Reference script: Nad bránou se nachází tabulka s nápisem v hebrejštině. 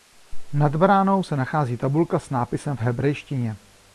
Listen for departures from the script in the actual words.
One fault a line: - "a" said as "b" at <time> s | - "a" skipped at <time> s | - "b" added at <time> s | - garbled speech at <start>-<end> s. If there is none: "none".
none